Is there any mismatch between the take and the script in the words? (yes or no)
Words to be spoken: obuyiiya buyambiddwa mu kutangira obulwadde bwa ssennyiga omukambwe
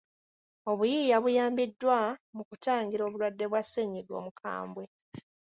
no